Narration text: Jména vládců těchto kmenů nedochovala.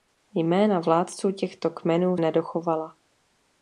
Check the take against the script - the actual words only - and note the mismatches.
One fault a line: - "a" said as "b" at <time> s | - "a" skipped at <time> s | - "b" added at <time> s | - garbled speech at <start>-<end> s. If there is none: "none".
none